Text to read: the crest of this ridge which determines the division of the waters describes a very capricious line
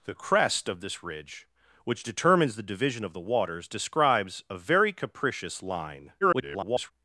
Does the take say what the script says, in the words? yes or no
no